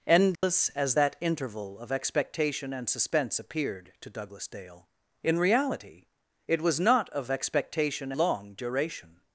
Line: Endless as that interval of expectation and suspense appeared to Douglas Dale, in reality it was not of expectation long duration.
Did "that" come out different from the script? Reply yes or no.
no